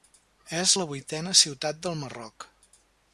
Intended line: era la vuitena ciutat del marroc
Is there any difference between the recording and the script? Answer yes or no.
yes